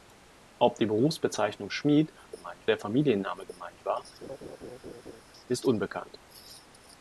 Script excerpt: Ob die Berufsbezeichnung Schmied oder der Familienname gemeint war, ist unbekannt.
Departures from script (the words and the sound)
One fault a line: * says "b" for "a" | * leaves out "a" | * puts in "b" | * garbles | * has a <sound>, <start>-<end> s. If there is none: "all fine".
* says "gemeint" for "oder"
* has a laugh, 4.2-5.2 s